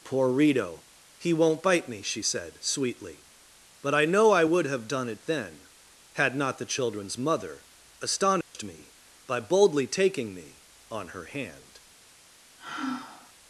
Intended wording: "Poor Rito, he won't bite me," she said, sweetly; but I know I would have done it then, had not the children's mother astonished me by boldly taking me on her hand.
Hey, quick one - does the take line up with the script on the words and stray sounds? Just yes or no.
no